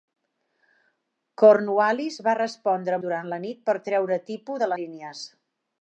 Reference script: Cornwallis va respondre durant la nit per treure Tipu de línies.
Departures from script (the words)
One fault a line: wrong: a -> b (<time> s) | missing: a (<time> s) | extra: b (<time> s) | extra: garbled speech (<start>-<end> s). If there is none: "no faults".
no faults